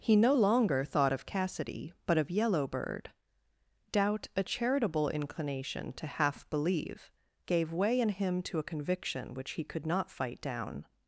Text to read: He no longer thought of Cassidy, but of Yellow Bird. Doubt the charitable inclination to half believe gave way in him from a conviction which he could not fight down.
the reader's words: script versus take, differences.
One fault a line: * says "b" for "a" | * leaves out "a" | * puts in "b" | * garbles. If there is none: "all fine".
* says "a" for "the"
* says "to" for "from"